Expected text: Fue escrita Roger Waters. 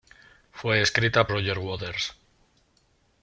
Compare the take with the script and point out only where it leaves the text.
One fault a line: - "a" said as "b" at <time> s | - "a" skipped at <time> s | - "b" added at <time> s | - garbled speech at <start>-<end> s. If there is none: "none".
none